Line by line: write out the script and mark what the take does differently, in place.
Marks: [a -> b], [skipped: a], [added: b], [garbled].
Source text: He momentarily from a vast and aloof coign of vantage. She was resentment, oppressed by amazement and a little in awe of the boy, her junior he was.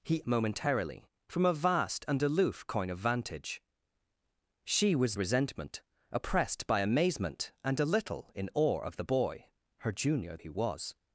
He momentarily from a vast and aloof coign of vantage. She was resentment, oppressed by amazement and a little in awe of the boy, her junior he was.